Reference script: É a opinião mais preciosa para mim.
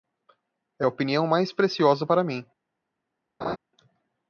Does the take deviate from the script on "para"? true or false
false